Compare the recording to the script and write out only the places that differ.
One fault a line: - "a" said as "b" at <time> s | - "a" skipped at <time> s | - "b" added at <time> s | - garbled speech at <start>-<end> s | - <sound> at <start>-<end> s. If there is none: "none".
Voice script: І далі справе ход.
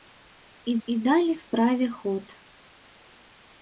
- "і" added at 0.9 s